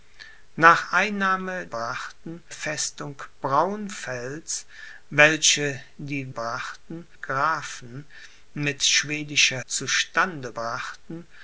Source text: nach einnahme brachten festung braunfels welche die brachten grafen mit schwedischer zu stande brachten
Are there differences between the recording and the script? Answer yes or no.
no